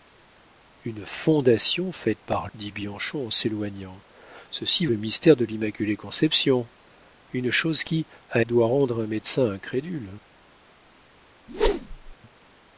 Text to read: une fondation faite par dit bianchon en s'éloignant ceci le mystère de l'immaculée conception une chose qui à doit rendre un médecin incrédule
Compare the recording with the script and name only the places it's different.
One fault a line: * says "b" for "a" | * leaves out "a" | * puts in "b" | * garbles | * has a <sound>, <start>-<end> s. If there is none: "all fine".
* has a whoosh, 11.5-12.2 s